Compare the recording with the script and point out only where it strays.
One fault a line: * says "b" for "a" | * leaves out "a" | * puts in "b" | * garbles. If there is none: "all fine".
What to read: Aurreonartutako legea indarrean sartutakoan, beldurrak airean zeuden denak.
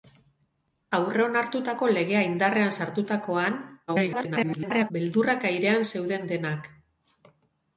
* garbles